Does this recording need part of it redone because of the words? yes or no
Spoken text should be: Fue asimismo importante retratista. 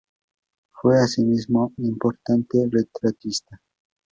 no